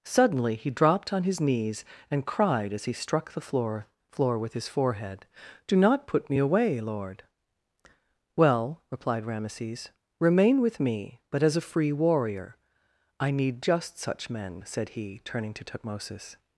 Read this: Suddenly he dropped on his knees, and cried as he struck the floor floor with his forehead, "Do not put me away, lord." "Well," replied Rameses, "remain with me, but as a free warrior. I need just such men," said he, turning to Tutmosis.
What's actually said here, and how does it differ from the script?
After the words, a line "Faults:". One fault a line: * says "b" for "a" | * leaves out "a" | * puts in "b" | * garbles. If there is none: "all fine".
Suddenly he dropped on his knees, and cried as he struck the floor floor with his forehead, "Do not put me away, lord." "Well," replied Rameses, "remain with me, but as a free warrior. I need just such men," said he, turning to Tutmosis.
Faults:
all fine